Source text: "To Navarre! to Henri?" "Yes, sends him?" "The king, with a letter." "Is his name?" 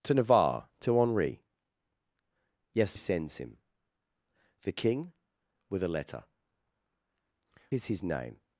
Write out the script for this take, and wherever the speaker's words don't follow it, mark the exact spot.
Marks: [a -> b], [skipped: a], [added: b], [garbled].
"To Navarre! to Henri?" "Yes, sends him?" "The king, with a letter." "Is his name?"